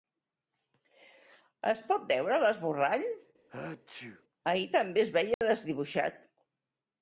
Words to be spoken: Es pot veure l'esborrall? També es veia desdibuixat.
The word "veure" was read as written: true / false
true